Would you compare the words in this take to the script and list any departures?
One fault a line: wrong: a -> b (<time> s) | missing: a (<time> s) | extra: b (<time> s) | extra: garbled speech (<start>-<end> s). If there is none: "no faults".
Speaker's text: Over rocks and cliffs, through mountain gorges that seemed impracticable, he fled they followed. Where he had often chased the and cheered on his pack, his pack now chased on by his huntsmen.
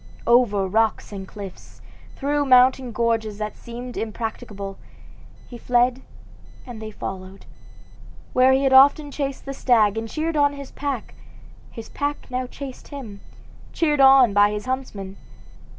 extra: and (6.7 s)
extra: stag (9.5 s)
extra: him cheered (12.9 s)